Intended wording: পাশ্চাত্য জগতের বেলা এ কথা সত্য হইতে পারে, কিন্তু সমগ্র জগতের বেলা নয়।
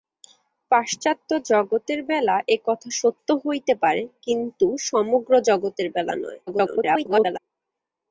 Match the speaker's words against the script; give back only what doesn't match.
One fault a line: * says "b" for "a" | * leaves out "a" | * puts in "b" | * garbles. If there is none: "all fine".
* garbles